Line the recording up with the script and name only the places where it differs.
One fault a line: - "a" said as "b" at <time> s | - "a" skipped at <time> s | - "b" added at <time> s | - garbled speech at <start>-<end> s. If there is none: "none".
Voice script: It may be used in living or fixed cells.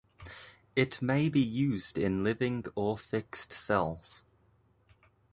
none